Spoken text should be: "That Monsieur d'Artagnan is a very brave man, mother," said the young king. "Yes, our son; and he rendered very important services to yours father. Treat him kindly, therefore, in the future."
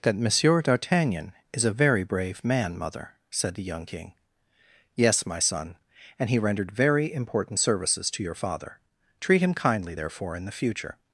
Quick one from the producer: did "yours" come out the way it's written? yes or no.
no